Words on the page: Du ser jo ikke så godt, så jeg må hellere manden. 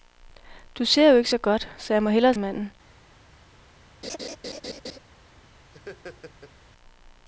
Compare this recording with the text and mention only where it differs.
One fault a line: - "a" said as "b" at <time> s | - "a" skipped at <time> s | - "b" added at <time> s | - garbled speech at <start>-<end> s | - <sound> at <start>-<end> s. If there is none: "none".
- laugh at 4.0-5.0 s
- laugh at 5.7-6.5 s